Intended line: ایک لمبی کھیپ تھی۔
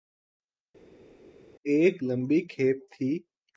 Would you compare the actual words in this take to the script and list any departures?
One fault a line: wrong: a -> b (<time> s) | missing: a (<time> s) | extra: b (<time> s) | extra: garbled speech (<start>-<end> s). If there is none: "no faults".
no faults